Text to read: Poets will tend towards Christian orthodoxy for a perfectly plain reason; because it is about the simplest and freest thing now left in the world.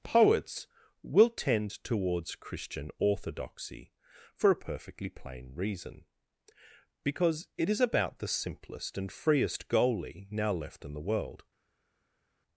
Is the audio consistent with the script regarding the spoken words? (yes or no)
no